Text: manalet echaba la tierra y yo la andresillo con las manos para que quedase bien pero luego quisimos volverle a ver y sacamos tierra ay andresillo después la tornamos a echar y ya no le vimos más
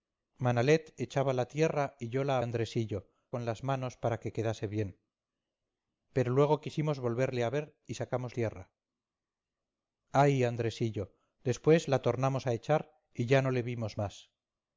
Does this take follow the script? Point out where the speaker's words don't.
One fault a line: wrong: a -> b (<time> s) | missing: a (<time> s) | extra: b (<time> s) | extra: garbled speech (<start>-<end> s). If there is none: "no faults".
no faults